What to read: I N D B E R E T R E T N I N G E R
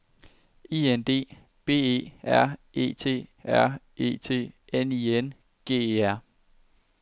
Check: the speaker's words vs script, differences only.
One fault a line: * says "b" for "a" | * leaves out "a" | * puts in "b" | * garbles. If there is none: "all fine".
all fine